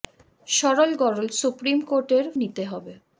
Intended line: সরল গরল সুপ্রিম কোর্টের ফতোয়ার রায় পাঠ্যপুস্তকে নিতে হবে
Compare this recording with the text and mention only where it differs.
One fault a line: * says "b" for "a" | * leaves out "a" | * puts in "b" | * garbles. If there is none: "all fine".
* leaves out "ফতোয়ার রায় পাঠ্যপুস্তকে"